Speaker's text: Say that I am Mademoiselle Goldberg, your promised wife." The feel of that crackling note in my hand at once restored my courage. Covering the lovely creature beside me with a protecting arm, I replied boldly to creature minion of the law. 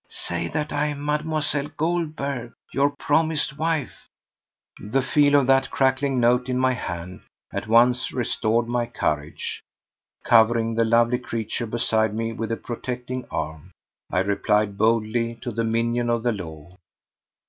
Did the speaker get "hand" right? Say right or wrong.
right